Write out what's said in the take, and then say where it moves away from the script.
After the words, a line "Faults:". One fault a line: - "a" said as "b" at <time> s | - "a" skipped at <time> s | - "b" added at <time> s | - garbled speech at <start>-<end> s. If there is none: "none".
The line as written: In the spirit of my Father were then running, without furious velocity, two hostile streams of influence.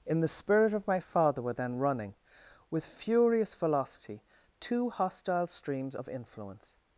In the spirit of my Father were then running, with furious velocity, two hostile streams of influence.
Faults:
- "without" said as "with" at 2.7 s